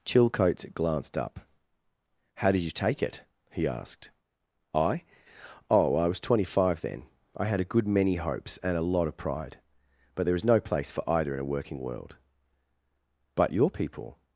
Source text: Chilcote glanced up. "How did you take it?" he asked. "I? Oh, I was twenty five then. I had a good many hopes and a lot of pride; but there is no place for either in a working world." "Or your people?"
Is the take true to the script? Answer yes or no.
no